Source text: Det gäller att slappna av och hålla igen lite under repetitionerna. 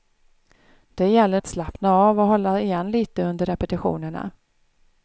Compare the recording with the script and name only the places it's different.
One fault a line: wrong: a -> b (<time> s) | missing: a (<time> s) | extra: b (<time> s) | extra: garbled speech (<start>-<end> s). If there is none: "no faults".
no faults